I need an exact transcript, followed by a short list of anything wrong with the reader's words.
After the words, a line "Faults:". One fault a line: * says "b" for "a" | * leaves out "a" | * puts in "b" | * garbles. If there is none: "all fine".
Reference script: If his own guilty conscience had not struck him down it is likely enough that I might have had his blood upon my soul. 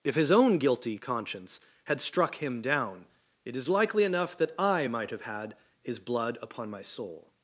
If his own guilty conscience had struck him down it is likely enough that I might have had his blood upon my soul.
Faults:
* leaves out "not"